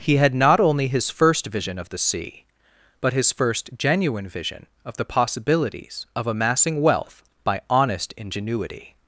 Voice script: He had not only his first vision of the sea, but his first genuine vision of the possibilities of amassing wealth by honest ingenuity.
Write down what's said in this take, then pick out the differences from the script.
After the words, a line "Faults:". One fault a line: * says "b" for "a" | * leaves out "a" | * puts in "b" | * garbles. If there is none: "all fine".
He had not only his first vision of the sea, but his first genuine vision of the possibilities of amassing wealth by honest ingenuity.
Faults:
all fine